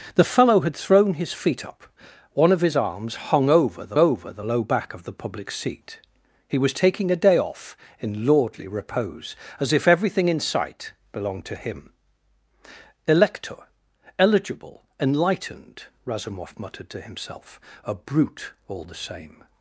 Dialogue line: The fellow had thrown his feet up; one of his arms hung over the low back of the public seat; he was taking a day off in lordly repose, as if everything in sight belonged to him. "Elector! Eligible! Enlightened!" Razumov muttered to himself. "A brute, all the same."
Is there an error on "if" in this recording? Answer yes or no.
no